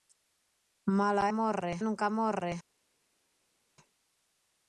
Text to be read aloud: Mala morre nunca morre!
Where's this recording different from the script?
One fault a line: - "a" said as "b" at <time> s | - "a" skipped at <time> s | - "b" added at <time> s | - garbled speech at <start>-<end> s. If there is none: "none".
none